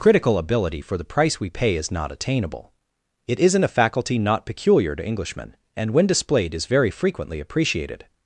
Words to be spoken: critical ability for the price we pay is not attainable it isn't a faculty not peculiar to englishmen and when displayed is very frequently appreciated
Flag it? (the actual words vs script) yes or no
no